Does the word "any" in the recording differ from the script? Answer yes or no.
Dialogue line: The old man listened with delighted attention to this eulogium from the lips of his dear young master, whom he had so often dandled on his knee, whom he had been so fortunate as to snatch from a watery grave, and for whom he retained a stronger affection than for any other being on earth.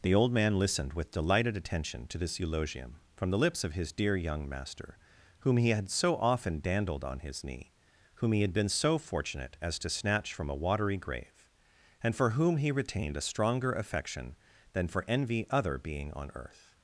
yes